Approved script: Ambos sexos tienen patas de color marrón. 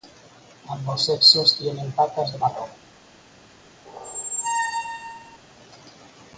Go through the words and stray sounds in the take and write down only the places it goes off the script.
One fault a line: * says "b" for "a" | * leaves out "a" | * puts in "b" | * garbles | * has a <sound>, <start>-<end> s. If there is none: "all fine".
* leaves out "color"
* has a squeak, 3.8-5.4 s